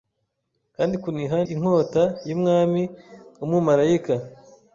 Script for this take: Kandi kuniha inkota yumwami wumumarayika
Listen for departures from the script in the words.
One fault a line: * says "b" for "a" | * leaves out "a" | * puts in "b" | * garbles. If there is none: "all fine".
all fine